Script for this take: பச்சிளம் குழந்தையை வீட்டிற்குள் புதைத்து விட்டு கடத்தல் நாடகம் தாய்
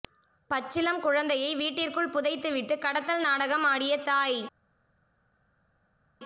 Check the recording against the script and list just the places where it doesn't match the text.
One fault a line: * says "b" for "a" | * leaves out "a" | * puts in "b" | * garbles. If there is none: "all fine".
* puts in "ஆடிய"